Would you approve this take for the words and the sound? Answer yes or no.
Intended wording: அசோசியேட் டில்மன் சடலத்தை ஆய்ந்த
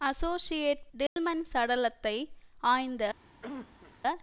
no